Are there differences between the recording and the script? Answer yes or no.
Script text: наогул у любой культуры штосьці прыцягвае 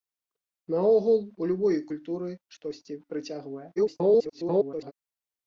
yes